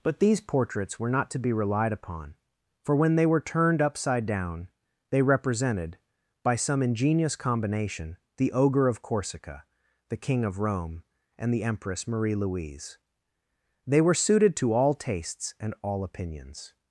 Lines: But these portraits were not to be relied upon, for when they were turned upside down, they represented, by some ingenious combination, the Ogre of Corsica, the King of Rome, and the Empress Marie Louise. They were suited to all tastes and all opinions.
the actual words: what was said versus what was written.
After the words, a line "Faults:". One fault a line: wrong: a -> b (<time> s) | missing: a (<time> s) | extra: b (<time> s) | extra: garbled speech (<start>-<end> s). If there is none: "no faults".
But these portraits were not to be relied upon, for when they were turned upside down, they represented, by some ingenious combination, the Ogre of Corsica, the King of Rome, and the Empress Marie Louise. They were suited to all tastes and all opinions.
Faults:
no faults